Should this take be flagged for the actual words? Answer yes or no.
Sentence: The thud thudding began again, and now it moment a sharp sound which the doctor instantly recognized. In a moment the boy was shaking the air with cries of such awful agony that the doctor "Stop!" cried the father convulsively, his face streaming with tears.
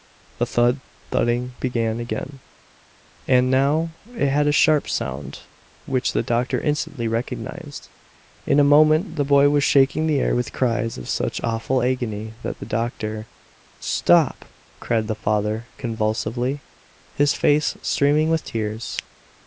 yes